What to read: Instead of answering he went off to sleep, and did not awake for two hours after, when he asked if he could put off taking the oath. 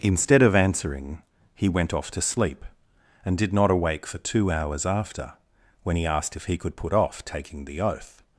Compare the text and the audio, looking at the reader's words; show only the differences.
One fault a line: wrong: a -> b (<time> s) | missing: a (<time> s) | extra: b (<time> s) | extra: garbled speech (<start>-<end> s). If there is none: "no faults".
no faults